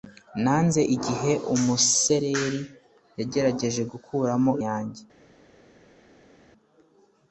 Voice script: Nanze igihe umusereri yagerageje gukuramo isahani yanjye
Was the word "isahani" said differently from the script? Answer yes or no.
yes